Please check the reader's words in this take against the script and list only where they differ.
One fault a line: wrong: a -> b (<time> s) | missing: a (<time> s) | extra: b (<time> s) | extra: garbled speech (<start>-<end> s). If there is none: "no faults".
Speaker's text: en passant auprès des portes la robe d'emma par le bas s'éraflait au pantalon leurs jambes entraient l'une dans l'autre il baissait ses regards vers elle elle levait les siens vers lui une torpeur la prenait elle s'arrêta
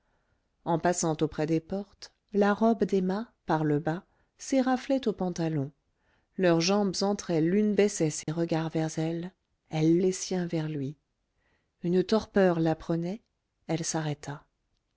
missing: dans l'autre il (7.8 s)
missing: levait (10.0 s)